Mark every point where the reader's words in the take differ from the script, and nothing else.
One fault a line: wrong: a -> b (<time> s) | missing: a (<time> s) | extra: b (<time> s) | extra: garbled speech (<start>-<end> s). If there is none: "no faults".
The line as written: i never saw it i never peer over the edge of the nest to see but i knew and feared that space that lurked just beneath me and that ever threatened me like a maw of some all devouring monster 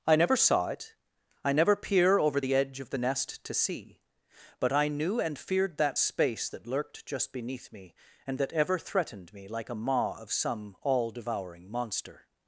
no faults